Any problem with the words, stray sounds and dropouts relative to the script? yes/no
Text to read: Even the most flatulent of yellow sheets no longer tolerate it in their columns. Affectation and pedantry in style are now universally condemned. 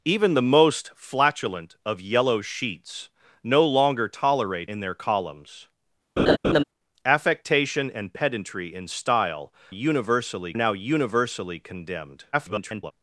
yes